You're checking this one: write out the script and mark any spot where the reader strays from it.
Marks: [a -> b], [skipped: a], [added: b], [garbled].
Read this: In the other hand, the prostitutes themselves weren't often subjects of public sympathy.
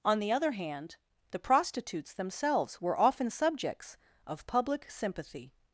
[In -> On] the other hand, the prostitutes themselves [weren't -> were] often subjects of public sympathy.